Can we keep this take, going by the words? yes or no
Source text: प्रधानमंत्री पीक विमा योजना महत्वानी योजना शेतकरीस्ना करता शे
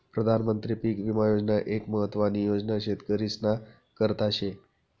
no